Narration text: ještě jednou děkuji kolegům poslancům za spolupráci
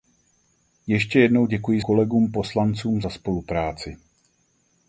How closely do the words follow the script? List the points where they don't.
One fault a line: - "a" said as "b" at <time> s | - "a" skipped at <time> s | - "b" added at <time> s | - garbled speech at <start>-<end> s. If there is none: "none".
none